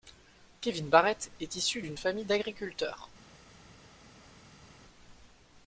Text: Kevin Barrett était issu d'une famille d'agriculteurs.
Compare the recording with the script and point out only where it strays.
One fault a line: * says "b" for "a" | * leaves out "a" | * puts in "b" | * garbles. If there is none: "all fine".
* says "est" for "était"